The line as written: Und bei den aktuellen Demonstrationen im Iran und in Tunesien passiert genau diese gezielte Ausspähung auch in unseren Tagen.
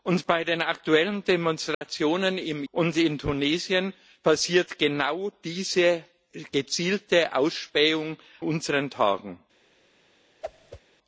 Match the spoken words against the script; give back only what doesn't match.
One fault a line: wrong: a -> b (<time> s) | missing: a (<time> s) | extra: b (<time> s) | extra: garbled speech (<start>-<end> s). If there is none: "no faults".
missing: Iran (2.6 s)
missing: auch in (8.2 s)